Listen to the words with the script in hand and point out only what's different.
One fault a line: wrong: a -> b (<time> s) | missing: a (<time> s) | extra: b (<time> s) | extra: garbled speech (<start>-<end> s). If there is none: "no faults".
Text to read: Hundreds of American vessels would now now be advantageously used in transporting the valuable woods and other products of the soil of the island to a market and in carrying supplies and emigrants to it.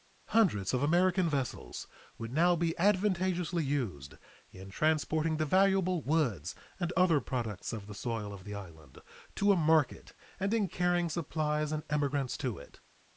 missing: now (2.5 s)